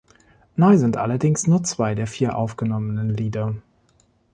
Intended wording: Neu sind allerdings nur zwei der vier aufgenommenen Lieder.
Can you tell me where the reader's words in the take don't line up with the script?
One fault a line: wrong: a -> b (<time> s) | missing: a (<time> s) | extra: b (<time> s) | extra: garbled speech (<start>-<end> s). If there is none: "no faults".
no faults